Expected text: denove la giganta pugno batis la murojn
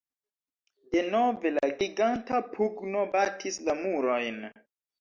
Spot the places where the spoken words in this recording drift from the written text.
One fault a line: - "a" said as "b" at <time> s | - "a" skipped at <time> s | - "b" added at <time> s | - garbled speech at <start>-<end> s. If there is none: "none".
none